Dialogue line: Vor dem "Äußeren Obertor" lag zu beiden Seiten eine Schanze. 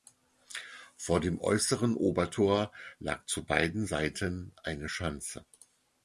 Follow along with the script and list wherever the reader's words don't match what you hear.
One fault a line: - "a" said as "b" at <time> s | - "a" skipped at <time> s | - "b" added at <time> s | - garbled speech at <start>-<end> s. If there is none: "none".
none